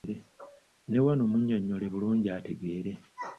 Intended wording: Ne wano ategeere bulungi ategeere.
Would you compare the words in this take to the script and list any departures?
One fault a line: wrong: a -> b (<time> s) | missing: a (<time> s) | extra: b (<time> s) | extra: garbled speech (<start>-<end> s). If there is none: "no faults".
wrong: ategeere -> munnyonnyole (1.3 s)